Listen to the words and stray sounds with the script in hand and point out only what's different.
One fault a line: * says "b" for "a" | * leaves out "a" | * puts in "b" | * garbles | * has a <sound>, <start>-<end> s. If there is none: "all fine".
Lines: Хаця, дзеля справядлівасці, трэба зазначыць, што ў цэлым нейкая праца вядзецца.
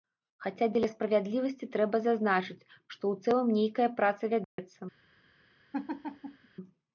* has a dropout, 4.4-4.6 s
* has a laugh, 5.7-6.5 s